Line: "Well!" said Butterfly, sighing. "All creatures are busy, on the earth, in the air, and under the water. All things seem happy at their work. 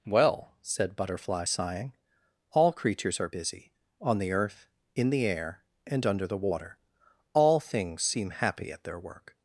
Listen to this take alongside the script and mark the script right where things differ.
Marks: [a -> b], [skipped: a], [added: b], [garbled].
"Well!" said Butterfly, sighing. "All creatures are busy, on the earth, in the air, and under the water. All things seem happy at their work.